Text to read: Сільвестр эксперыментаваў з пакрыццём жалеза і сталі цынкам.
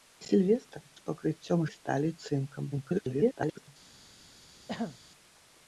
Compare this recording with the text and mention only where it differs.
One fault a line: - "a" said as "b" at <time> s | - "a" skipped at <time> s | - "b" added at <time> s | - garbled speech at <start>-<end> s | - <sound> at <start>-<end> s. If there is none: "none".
- "эксперыментаваў" skipped at 0.8 s
- "жалеза" skipped at 1.6 s
- garbled speech at 2.7-3.7 s
- throat clearing at 4.7-5.0 s